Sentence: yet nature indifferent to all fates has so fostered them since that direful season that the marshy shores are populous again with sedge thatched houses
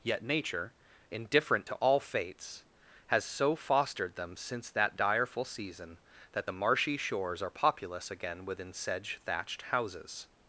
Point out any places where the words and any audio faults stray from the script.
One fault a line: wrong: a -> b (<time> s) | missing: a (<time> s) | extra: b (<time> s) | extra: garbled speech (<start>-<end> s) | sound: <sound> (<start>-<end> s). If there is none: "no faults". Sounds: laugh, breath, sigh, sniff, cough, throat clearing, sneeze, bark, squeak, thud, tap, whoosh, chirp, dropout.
wrong: with -> within (8.4 s)